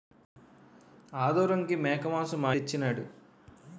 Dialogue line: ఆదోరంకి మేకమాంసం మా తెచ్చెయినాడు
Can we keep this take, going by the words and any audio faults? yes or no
yes